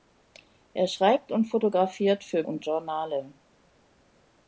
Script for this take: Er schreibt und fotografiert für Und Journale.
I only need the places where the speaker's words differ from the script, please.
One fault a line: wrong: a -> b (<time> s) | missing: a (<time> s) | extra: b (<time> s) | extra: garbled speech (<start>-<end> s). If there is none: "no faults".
no faults